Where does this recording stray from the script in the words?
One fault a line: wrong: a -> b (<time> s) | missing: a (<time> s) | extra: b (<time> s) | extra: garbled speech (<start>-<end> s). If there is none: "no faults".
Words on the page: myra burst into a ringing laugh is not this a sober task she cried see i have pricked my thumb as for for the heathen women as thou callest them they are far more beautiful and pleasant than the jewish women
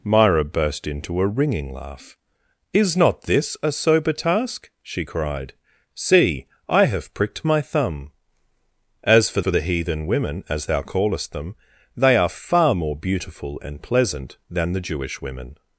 no faults